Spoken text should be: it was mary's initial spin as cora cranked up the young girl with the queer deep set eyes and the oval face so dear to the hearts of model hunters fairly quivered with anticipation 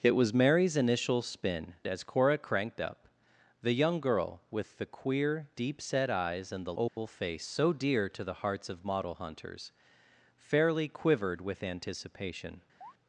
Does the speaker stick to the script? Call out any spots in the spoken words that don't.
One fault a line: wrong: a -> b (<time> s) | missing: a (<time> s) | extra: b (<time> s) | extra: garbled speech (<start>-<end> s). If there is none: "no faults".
no faults